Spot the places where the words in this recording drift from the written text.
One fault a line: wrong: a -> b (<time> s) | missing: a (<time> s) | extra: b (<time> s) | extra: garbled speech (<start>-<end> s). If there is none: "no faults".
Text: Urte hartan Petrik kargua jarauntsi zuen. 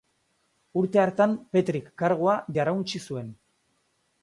no faults